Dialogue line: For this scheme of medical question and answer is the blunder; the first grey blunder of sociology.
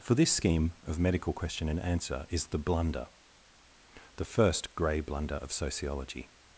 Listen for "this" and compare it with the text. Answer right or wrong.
right